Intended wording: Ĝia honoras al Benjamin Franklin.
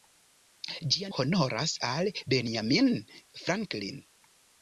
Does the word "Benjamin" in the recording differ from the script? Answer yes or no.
no